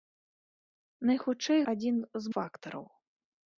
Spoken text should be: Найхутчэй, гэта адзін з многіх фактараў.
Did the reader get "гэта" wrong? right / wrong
wrong